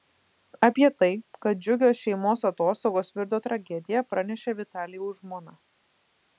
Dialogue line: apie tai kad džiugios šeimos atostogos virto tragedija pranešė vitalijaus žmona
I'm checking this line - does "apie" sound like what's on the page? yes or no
yes